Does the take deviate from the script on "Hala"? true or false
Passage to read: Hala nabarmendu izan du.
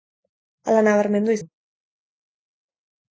false